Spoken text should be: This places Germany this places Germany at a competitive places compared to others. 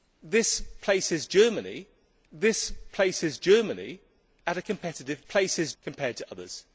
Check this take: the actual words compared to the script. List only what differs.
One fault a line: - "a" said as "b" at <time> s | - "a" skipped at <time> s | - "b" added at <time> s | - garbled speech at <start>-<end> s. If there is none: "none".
none